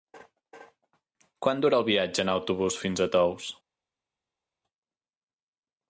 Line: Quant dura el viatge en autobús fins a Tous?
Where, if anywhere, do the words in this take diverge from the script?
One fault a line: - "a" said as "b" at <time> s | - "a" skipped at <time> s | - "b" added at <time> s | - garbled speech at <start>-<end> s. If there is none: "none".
none